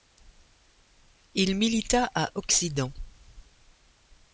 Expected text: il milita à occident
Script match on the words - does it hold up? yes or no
yes